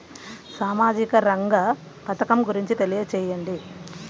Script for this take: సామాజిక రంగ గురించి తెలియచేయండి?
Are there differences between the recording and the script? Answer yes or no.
yes